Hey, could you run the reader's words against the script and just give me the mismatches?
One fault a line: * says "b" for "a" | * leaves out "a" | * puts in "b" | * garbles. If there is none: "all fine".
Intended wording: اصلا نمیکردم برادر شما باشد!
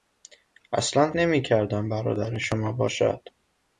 all fine